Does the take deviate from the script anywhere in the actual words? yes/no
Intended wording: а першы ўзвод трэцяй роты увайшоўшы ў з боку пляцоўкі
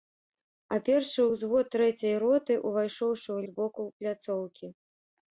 no